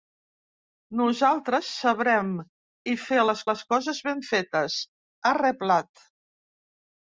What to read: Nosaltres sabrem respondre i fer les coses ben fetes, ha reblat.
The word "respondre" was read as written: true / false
false